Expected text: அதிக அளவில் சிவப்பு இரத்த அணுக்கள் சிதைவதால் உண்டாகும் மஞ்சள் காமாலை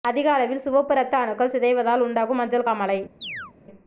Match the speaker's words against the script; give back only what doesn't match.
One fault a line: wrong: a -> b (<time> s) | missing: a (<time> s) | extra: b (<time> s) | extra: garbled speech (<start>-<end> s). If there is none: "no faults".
no faults